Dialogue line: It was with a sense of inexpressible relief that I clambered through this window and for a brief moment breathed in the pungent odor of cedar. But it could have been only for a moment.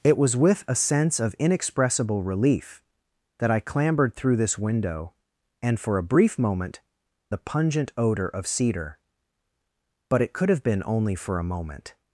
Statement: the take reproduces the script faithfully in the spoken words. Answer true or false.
false